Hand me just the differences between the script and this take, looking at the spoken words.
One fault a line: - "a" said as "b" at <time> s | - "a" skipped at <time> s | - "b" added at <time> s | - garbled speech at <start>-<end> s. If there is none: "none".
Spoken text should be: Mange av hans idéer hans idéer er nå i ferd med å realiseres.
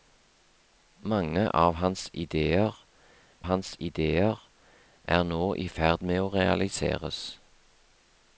none